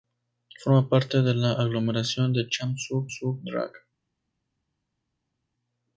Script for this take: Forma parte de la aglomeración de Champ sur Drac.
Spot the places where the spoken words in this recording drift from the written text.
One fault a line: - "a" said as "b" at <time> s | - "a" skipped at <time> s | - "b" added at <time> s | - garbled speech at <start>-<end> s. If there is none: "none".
- "sur" added at 3.1 s